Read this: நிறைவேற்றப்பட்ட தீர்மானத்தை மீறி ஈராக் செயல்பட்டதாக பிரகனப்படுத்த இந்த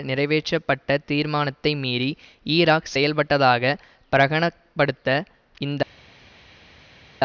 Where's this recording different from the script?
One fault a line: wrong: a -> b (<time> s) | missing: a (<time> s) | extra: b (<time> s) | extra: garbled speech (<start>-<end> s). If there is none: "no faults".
no faults